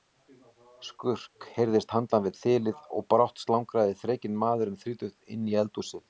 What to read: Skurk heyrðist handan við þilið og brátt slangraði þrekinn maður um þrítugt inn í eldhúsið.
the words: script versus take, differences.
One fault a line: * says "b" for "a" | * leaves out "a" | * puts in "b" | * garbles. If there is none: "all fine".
all fine